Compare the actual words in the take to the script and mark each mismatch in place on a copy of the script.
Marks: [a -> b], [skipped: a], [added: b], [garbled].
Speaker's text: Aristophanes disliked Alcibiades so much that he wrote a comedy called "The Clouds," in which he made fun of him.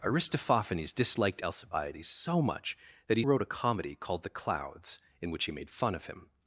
Aristophanes disliked Alcibiades so much that he wrote a comedy called "The Clouds," in which he made fun of him.